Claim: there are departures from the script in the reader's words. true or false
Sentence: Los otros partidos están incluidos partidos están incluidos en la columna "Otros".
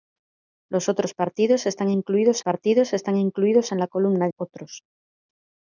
false